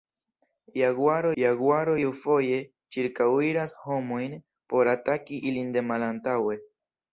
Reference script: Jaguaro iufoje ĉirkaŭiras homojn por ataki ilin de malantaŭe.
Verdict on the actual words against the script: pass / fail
fail